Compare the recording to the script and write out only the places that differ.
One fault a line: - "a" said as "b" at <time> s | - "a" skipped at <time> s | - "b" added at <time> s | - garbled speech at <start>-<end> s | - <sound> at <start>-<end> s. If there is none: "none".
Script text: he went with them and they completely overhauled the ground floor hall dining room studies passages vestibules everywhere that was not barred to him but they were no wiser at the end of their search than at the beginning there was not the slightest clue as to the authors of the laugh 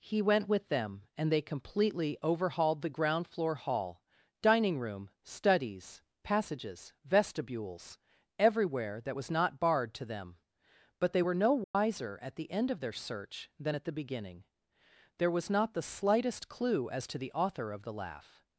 - "him" said as "them" at 10.0 s
- dropout at 11.6-11.7 s
- "authors" said as "author" at 17.3 s